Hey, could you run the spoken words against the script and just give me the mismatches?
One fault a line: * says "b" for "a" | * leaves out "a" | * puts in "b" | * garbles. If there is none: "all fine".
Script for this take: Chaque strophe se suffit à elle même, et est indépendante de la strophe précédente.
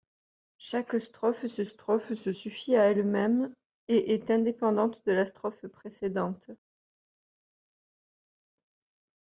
* puts in "strophe se"